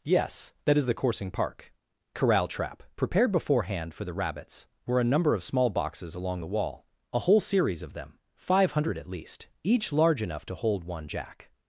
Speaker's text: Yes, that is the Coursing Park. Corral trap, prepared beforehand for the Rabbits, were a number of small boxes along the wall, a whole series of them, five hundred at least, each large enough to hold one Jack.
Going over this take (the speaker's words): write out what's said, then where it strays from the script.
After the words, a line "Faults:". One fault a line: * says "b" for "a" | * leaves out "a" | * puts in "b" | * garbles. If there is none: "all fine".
Yes, that is the Coursing Park. Corral trap, prepared beforehand for the Rabbits, were a number of small boxes along the wall, a whole series of them, five hundred at least, each large enough to hold one Jack.
Faults:
all fine